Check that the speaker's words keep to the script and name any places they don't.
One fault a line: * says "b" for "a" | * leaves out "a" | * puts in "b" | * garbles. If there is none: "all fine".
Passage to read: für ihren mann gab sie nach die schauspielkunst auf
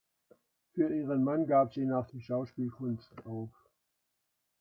all fine